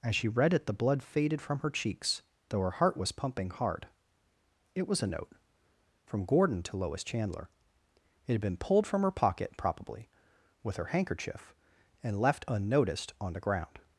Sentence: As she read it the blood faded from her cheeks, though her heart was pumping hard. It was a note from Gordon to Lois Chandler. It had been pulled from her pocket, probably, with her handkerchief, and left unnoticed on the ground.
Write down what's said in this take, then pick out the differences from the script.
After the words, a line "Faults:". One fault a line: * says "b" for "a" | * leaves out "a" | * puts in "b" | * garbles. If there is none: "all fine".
As she read it the blood faded from her cheeks, though her heart was pumping hard. It was a note from Gordon to Lois Chandler. It had been pulled from her pocket, probably, with her handkerchief, and left unnoticed on the ground.
Faults:
all fine